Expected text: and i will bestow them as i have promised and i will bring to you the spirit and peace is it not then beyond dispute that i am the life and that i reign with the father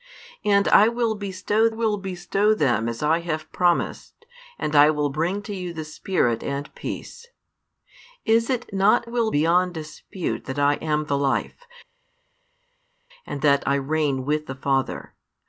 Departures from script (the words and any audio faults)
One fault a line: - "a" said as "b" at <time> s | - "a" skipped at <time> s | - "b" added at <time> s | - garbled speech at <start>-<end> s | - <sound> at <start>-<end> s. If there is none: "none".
- "will bestow" added at 1.7 s
- "then" said as "will" at 9.0 s